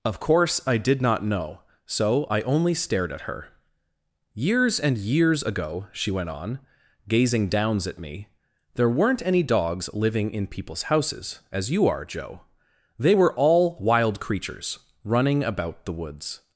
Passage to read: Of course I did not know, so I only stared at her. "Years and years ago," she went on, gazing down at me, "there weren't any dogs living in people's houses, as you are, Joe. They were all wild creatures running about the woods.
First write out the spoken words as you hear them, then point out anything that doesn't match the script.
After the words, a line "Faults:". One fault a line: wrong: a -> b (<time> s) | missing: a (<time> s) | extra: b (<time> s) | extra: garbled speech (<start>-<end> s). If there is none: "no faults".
Of course I did not know, so I only stared at her. "Years and years ago," she went on, gazing downs at me, "there weren't any dogs living in people's houses, as you are, Joe. They were all wild creatures running about the woods.
Faults:
wrong: down -> downs (7.5 s)